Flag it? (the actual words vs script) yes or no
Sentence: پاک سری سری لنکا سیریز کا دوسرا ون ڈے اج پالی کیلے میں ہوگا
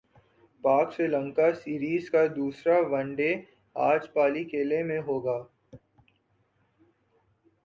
yes